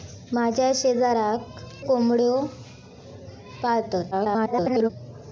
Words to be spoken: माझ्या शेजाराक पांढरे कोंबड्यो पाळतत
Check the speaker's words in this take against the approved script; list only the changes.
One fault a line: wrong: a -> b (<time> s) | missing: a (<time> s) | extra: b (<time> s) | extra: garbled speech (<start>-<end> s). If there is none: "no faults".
missing: पांढरे (1.6 s)
extra: garbled speech (4.1-4.9 s)